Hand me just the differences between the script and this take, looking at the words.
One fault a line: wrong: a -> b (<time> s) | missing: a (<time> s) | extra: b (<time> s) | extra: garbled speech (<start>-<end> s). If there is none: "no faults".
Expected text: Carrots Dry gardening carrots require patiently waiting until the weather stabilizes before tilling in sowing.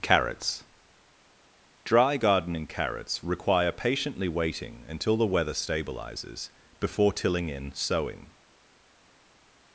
no faults